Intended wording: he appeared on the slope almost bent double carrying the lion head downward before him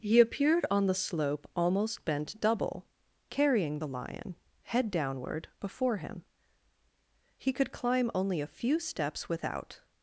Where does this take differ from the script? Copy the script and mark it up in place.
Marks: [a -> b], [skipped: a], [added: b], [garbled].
he appeared on the slope almost bent double carrying the lion head downward before him [added: he could climb only a few steps without]